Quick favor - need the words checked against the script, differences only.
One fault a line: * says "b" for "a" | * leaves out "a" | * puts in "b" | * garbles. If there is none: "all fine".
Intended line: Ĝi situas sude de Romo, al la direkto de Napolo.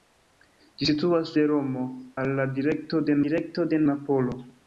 * leaves out "sude"
* puts in "direkto de"